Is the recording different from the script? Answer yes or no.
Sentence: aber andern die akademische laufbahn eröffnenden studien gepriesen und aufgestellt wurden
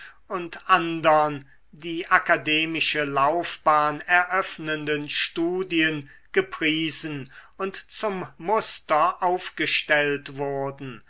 yes